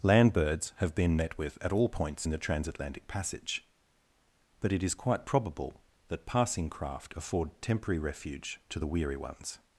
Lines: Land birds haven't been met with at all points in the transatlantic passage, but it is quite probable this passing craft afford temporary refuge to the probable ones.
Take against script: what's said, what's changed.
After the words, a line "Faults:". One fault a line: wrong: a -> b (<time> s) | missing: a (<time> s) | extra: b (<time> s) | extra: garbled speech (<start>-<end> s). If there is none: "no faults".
Land birds have been met with at all points in the transatlantic passage, but it is quite probable that passing craft afford temporary refuge to the weary ones.
Faults:
wrong: haven't -> have (0.8 s)
wrong: this -> that (6.1 s)
wrong: probable -> weary (8.9 s)